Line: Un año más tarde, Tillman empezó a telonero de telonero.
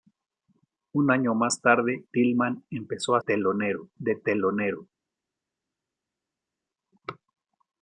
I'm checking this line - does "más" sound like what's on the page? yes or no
yes